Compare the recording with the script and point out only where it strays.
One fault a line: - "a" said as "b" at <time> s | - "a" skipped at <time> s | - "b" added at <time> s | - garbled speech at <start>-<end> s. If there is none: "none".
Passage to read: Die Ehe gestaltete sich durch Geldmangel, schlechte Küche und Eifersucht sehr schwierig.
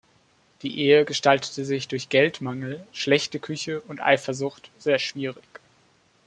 none